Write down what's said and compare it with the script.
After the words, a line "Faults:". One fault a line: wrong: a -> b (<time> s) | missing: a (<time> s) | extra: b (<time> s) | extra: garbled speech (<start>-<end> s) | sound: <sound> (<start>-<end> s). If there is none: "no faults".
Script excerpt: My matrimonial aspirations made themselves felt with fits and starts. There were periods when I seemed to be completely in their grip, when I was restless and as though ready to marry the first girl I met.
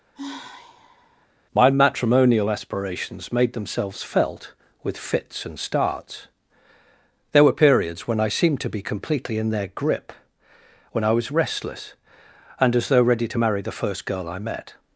My matrimonial aspirations made themselves felt with fits and starts. There were periods when I seemed to be completely in their grip, when I was restless and as though ready to marry the first girl I met.
Faults:
sound: sigh (0.1-1.3 s)